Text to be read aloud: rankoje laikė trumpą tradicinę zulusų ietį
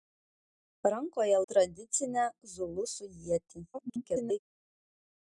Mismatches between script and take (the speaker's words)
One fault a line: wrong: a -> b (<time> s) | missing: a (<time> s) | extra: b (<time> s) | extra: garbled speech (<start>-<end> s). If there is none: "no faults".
missing: laikė trumpą (1.4 s)
extra: garbled speech (3.7-4.4 s)